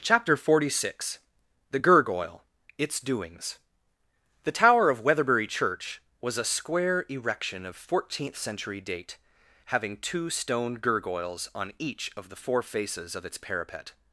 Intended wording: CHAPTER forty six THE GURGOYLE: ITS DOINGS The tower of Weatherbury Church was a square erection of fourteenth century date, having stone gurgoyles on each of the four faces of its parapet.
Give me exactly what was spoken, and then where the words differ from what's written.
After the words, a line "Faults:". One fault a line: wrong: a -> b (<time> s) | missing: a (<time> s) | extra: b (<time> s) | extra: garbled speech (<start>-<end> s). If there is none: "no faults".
CHAPTER forty six THE GURGOYLE: ITS DOINGS The tower of Weatherbury Church was a square erection of fourteenth century date, having two stone gurgoyles on each of the four faces of its parapet.
Faults:
extra: two (10.0 s)